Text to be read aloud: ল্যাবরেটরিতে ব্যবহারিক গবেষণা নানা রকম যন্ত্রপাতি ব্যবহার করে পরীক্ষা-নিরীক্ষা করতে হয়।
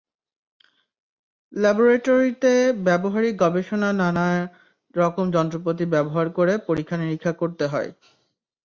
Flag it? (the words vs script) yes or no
no